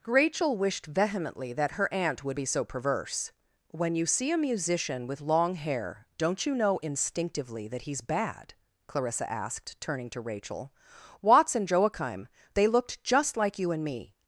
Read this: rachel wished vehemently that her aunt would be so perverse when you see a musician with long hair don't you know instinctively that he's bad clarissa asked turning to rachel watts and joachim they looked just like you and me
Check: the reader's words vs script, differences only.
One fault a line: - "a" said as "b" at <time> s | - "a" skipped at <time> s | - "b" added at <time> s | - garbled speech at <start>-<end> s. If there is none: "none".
none